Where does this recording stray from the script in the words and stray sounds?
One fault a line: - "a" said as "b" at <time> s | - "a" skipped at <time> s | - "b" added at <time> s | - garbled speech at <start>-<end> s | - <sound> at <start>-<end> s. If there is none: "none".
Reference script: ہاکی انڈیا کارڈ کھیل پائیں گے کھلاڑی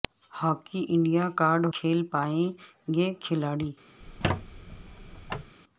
- squeak at 4.0-5.5 s